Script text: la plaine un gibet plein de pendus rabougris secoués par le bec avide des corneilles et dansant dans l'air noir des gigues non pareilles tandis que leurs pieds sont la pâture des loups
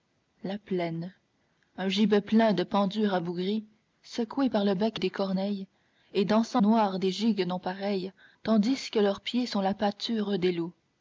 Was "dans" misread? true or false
true